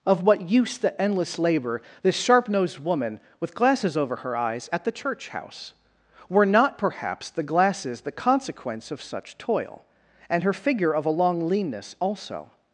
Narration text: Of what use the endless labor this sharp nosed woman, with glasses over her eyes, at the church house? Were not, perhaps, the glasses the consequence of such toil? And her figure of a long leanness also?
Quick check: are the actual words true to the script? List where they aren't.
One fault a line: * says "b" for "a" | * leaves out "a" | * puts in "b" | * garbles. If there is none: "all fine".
all fine